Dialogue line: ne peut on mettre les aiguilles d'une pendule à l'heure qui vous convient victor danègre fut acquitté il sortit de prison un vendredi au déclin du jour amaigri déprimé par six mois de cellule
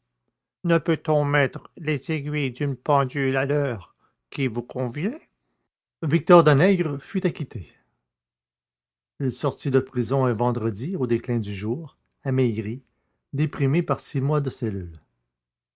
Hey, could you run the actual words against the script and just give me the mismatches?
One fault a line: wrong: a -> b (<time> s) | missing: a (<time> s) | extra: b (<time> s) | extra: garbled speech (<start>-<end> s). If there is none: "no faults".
no faults